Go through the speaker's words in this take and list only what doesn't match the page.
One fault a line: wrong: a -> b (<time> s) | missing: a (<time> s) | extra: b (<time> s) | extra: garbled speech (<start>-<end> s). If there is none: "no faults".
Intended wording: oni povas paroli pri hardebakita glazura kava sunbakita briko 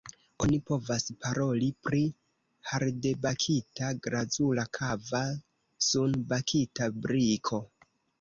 no faults